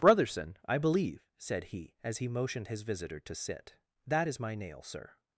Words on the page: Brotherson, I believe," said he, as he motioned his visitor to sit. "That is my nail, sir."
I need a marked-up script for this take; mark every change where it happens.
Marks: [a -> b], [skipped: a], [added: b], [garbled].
Brotherson, I believe," said he, as he motioned his visitor to sit. "That is my nail, sir."